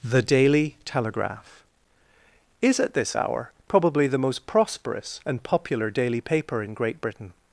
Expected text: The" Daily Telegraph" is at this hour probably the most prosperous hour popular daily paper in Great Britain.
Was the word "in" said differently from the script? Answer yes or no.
no